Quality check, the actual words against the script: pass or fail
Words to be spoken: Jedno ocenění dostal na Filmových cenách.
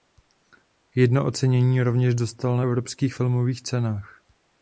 fail